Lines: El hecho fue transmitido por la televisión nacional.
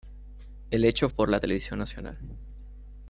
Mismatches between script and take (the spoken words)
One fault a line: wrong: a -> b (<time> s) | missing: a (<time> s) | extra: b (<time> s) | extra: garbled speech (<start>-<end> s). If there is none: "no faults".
missing: fue transmitido (1.1 s)